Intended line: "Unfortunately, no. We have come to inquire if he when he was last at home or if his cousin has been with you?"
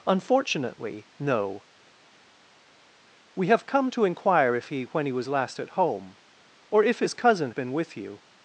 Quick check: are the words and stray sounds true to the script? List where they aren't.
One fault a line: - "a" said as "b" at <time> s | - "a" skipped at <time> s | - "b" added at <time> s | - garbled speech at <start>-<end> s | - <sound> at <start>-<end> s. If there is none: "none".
- "has" skipped at 7.5 s